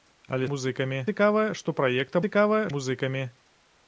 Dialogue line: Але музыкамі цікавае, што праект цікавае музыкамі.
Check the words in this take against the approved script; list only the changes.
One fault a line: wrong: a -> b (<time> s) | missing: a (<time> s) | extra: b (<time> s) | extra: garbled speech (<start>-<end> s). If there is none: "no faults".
no faults